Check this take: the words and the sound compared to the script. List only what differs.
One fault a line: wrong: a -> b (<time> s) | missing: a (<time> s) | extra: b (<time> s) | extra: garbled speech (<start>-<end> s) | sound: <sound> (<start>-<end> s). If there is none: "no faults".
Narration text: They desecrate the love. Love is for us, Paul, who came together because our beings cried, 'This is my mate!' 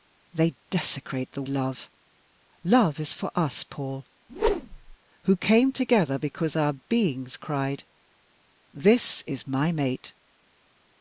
sound: whoosh (4.3-5.0 s)